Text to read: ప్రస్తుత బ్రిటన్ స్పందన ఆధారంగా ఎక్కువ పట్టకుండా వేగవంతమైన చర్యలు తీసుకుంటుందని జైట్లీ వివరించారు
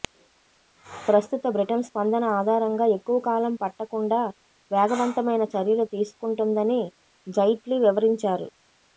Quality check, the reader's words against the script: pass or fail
fail